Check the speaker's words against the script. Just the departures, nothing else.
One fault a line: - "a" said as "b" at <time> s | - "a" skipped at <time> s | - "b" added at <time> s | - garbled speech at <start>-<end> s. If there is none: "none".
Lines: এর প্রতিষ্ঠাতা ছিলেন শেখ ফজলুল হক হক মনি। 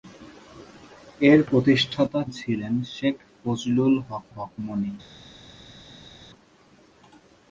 none